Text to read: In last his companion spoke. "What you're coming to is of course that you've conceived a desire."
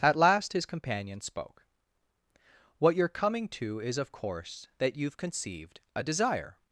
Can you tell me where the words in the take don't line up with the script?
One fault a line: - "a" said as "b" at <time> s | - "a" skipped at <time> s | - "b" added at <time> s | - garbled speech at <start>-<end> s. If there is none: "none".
- "In" said as "At" at 0.0 s